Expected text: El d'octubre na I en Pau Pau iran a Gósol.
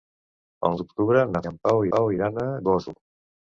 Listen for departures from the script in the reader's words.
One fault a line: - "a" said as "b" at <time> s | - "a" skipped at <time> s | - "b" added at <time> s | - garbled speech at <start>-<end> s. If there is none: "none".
none